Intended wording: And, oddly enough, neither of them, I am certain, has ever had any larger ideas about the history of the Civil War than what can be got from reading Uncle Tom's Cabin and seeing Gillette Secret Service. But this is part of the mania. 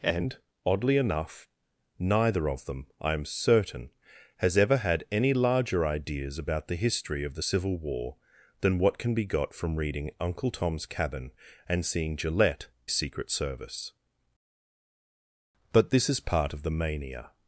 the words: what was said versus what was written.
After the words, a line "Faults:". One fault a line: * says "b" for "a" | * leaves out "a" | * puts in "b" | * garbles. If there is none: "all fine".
And, oddly enough, neither of them, I am certain, has ever had any larger ideas about the history of the Civil War than what can be got from reading Uncle Tom's Cabin and seeing Gillette Secret Service. But this is part of the mania.
Faults:
all fine